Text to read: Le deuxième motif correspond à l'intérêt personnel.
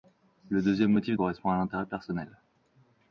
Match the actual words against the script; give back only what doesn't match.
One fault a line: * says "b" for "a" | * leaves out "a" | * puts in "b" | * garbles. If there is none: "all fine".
all fine